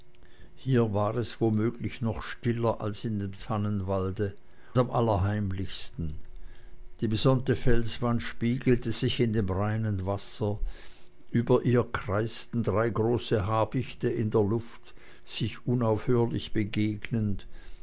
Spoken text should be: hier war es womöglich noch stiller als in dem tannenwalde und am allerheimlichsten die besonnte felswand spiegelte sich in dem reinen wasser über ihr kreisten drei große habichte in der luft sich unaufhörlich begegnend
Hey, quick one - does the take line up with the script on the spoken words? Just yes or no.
no